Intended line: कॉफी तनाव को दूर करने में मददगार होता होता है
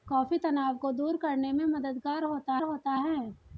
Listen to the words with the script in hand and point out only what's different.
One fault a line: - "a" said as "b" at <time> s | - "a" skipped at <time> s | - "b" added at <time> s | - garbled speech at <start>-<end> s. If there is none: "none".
none